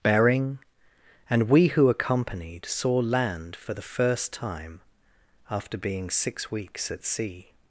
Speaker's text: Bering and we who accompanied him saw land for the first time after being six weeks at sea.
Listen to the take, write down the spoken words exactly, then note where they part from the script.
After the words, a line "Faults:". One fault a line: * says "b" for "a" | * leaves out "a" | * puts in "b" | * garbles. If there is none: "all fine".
Bering and we who accompanied saw land for the first time after being six weeks at sea.
Faults:
* leaves out "him"